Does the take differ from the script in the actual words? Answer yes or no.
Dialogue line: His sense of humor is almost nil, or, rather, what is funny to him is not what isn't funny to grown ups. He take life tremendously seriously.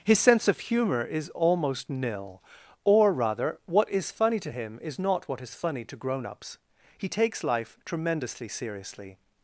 yes